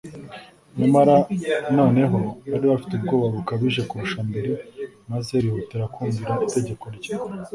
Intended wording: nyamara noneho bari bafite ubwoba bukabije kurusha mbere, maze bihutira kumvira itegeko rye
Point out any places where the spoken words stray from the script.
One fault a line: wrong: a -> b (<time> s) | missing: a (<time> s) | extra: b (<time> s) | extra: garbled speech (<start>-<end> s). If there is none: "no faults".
no faults